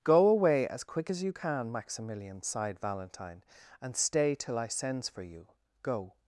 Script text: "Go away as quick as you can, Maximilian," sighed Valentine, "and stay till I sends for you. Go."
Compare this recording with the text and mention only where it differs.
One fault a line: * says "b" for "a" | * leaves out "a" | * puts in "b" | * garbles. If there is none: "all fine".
all fine